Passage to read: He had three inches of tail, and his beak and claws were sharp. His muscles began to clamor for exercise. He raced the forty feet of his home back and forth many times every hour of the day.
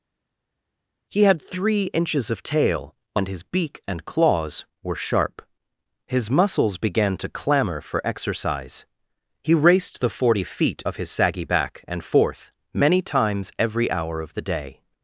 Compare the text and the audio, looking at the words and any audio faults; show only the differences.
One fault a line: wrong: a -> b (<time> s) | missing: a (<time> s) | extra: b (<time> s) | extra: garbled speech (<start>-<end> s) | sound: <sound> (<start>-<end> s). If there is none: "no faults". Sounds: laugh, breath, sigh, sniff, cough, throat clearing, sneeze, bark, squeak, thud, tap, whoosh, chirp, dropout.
wrong: home -> saggy (11.1 s)